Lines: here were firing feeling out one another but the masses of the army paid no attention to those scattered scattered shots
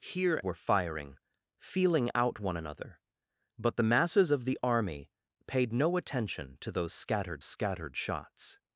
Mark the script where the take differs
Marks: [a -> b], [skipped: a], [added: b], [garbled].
here were firing feeling out one another but the masses of the army paid no attention to those scattered scattered shots